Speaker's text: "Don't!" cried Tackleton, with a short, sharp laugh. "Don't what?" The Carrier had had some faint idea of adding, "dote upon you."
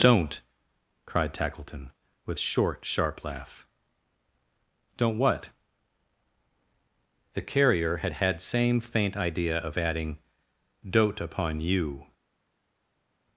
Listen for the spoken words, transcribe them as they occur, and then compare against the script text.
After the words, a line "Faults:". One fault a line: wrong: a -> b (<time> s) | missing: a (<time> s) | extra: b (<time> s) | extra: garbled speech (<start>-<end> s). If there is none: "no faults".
"Don't!" cried Tackleton, with short, sharp laugh. "Don't what?" The Carrier had had same faint idea of adding, "dote upon you."
Faults:
missing: a (2.4 s)
wrong: some -> same (8.4 s)